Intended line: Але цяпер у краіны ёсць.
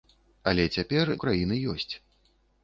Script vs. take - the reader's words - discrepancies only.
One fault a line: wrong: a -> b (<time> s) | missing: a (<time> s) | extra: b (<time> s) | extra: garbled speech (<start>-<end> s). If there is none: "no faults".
no faults